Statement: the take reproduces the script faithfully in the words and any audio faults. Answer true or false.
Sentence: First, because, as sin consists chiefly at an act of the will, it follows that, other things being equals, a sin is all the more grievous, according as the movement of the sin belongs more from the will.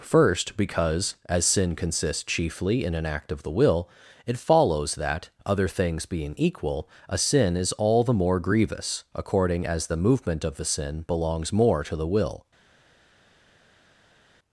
false